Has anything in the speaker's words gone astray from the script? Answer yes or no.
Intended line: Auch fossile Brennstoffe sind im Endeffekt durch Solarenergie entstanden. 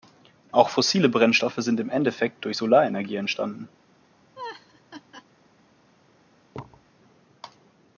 no